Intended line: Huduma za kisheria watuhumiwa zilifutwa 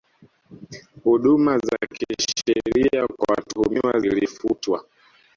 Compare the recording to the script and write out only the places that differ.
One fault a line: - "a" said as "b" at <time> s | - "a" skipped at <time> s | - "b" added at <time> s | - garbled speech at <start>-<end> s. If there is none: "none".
- "kwa" added at 3.1 s